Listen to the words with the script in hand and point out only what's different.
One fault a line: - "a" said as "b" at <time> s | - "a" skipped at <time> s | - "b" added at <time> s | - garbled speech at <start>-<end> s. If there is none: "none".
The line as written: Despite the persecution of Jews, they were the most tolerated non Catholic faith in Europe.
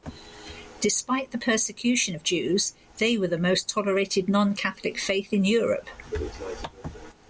none